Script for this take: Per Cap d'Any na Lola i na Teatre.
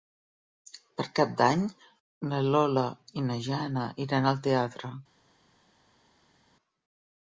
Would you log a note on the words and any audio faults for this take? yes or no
yes